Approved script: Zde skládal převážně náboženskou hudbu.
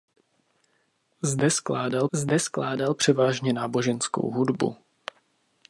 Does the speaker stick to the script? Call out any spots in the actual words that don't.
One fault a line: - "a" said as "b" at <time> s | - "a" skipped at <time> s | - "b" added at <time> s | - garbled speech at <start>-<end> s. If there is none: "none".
- "zde skládal" added at 2.1 s